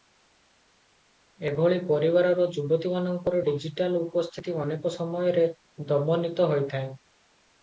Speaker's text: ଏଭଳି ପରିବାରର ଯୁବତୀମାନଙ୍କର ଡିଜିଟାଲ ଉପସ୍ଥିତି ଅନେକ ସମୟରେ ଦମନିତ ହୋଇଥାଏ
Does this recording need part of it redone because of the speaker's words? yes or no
no